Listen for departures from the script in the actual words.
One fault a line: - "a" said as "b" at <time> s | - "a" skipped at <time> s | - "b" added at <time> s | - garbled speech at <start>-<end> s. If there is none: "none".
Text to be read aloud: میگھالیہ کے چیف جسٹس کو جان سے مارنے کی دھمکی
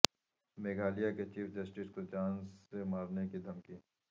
none